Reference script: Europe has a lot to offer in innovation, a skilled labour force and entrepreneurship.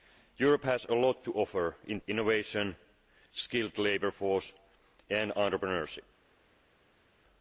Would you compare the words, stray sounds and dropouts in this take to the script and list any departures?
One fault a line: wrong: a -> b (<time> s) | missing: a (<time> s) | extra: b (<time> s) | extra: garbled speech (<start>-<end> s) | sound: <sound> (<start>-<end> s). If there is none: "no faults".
no faults